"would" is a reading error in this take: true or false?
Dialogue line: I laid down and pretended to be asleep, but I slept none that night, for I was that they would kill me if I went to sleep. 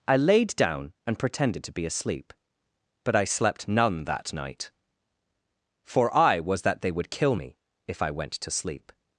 false